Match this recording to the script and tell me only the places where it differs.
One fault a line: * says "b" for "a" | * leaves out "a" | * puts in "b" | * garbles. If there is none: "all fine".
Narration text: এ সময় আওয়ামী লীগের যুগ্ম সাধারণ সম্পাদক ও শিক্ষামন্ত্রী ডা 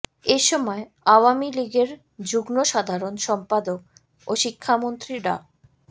all fine